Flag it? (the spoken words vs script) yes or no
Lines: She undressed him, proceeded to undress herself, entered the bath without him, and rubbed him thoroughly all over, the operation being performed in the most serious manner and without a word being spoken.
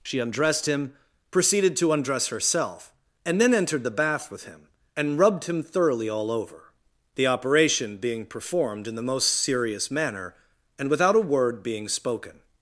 yes